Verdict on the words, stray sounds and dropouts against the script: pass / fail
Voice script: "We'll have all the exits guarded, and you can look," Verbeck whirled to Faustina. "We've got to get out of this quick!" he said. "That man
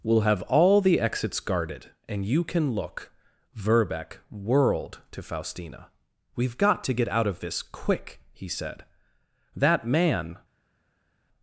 pass